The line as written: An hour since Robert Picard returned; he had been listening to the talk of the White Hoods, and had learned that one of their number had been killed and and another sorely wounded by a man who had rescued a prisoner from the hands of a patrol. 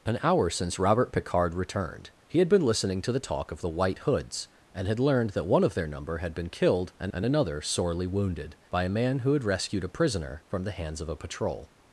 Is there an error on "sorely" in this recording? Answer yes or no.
no